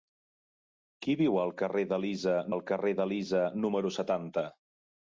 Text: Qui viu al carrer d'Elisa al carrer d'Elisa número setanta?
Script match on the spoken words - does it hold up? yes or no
yes